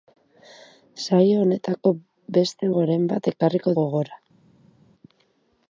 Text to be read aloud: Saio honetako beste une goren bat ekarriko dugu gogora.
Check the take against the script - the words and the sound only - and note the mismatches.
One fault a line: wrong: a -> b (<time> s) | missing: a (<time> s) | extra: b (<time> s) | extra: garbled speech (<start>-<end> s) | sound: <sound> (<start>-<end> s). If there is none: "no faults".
missing: une (2.7 s)
missing: dugu (3.7 s)